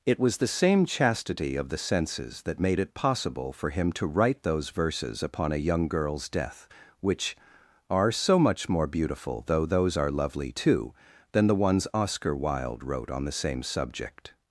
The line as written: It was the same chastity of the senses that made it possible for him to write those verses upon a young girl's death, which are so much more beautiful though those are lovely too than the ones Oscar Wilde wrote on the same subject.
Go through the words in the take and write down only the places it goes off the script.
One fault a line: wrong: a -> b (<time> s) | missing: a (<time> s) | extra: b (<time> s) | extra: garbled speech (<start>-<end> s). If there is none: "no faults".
no faults